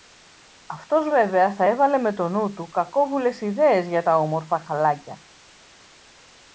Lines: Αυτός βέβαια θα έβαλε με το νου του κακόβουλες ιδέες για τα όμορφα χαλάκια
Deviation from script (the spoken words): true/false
false